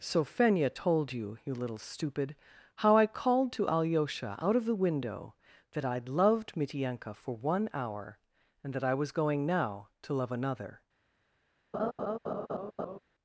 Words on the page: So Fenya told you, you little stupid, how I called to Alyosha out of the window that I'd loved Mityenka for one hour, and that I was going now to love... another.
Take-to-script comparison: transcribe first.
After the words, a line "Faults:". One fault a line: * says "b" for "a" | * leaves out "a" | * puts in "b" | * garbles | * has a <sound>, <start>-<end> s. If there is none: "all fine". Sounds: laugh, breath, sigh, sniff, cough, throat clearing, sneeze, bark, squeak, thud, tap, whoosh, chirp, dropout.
So Fenya told you, you little stupid, how I called to Alyosha out of the window that I'd loved Mityenka for one hour, and that I was going now to love... another.
Faults:
* has a laugh, 11.7-13.0 s